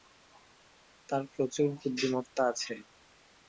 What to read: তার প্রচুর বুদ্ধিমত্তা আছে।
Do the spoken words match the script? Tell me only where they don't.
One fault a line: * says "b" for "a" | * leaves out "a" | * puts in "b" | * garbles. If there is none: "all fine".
all fine